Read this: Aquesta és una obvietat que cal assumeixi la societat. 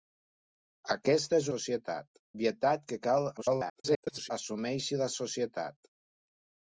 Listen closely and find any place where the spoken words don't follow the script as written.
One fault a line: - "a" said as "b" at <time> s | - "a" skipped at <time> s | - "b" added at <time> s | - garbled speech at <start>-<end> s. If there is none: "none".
- "una" said as "societat" at 1.5 s
- garbled speech at 3.4-4.3 s